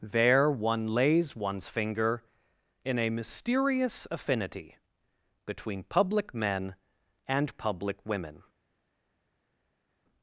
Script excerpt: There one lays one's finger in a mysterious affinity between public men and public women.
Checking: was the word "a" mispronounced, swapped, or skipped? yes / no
no